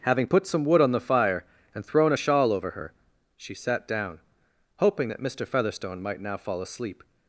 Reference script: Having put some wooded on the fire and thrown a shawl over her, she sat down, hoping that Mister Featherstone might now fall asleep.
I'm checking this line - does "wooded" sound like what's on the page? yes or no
no